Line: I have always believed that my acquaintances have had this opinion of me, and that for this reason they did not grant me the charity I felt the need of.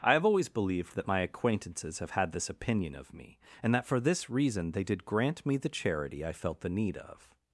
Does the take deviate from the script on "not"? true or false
true